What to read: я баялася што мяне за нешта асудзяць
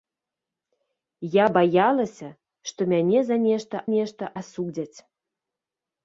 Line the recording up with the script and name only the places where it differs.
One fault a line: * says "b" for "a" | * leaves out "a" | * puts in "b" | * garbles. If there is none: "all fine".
* puts in "нешта"